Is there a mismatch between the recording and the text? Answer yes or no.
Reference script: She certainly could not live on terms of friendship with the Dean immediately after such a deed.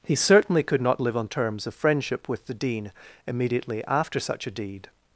yes